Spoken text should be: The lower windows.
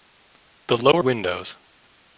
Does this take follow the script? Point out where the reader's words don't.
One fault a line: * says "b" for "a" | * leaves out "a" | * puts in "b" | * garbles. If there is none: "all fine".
all fine